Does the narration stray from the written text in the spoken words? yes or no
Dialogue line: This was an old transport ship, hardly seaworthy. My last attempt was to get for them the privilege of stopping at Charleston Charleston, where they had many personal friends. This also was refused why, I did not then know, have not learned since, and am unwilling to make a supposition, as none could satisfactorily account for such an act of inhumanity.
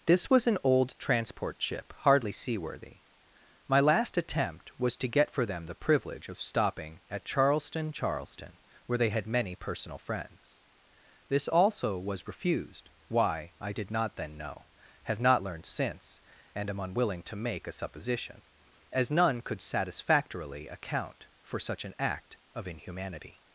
no